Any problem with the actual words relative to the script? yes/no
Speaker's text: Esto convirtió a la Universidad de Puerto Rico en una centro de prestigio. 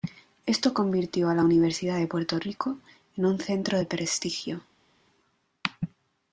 yes